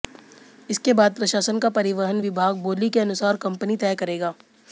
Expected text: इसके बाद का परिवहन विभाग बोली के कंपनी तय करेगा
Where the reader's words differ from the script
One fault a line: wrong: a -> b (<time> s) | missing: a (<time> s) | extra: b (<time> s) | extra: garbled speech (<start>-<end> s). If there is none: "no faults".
extra: प्रशासन (1.1 s)
extra: अनुसार (3.0 s)